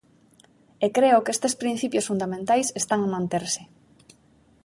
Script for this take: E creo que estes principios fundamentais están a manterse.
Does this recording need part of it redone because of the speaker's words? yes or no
no